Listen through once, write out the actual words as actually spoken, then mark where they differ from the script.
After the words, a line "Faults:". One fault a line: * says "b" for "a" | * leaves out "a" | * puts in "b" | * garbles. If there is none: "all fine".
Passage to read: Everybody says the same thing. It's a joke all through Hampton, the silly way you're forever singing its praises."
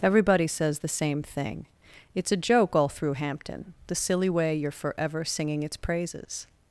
Everybody says the same thing. It's a joke all through Hampton, the silly way you're forever singing its praises."
Faults:
all fine